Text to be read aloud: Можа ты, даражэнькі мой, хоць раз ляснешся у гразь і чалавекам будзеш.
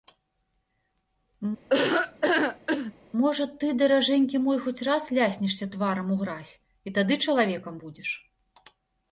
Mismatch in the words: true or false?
true